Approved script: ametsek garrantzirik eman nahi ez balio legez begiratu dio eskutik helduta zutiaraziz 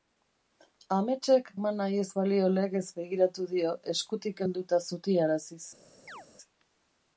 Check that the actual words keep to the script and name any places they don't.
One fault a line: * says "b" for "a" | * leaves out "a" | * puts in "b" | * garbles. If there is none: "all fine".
* leaves out "garrantzirik"